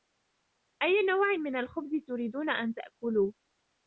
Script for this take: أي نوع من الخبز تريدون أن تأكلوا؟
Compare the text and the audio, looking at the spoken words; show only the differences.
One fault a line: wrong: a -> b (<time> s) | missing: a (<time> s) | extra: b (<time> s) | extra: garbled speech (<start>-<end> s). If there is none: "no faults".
no faults